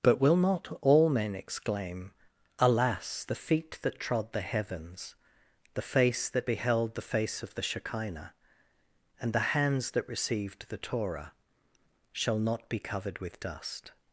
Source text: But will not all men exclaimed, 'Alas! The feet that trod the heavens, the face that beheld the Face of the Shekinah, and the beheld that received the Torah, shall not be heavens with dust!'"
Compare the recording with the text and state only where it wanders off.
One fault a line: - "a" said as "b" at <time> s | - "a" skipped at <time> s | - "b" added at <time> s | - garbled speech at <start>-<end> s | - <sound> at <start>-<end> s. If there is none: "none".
- "exclaimed" said as "exclaim" at 1.4 s
- "beheld" said as "hands" at 9.5 s
- "heavens" said as "covered" at 12.8 s